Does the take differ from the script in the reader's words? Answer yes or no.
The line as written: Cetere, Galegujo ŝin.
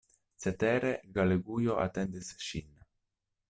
yes